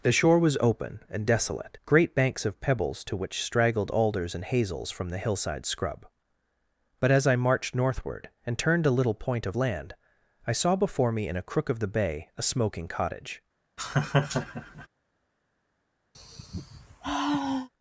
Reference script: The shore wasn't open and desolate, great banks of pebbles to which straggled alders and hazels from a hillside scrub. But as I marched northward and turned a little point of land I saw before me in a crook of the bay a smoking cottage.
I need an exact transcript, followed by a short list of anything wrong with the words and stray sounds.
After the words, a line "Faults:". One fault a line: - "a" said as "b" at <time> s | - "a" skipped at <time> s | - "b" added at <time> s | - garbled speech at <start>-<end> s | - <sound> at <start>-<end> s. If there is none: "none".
The shore was open and desolate, great banks of pebbles to which straggled alders and hazels from the hillside scrub. But as I marched northward and turned a little point of land I saw before me in a crook of the bay a smoking cottage.
Faults:
- "wasn't" said as "was" at 0.4 s
- "a" said as "the" at 5.1 s
- laugh at 13.8-14.9 s
- sigh at 16.1-17.7 s